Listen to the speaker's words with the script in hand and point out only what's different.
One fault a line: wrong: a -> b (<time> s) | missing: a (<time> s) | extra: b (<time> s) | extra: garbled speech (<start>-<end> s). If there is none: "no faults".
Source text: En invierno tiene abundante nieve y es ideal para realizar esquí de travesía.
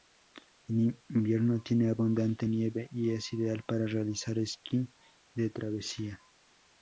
no faults